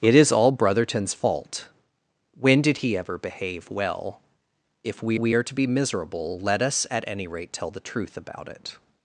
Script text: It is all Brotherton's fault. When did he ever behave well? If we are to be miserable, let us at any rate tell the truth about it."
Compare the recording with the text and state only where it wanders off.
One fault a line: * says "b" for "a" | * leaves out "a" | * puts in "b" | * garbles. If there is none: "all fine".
* puts in "we"